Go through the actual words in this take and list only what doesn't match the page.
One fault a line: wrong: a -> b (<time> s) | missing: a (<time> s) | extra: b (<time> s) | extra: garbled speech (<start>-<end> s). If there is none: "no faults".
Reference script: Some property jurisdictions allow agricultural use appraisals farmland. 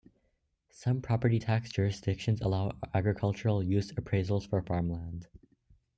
extra: tax (1.4 s)
extra: for (4.5 s)